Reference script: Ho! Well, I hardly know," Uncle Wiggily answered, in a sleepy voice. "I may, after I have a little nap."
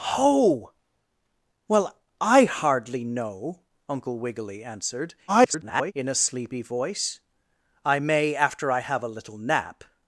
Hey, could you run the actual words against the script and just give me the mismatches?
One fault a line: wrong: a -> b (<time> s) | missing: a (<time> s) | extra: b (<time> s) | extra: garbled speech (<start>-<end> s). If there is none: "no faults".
extra: garbled speech (5.3-5.9 s)